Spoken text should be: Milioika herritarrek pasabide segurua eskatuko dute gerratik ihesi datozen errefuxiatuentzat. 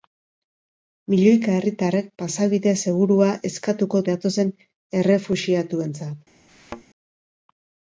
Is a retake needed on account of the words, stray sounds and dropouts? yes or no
yes